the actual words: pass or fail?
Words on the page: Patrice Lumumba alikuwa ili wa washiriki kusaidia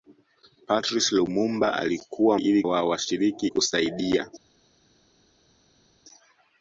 pass